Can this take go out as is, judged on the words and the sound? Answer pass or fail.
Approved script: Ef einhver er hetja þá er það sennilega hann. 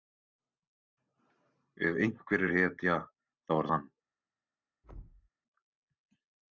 fail